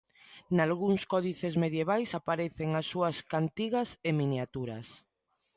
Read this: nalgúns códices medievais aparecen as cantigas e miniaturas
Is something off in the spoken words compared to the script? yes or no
yes